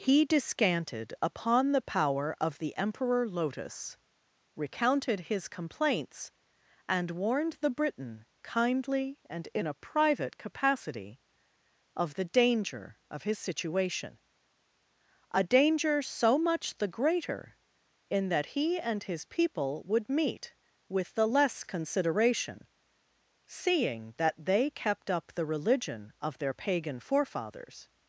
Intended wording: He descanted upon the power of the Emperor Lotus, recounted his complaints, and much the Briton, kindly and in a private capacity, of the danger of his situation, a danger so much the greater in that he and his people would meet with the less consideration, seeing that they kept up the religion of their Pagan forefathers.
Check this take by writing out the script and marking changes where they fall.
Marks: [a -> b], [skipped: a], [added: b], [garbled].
He descanted upon the power of the Emperor Lotus, recounted his complaints, and [much -> warned] the Briton, kindly and in a private capacity, of the danger of his situation, a danger so much the greater in that he and his people would meet with the less consideration, seeing that they kept up the religion of their Pagan forefathers.